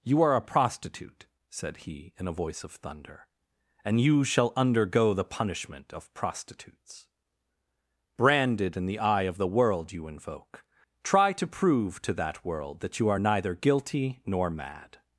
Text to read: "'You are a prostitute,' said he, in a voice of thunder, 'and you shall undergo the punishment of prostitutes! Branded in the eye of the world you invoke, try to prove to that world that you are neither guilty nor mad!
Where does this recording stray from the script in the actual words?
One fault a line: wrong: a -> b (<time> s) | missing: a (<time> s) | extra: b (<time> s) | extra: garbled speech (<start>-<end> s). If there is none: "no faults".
no faults